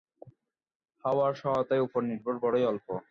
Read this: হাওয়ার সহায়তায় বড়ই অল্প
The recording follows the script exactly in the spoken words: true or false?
false